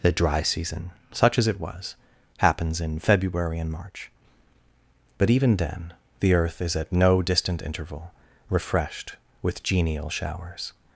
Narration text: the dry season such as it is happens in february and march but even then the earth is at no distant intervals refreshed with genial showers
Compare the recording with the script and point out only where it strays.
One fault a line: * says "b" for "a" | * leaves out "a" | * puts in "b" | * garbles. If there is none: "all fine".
* says "was" for "is"
* says "interval" for "intervals"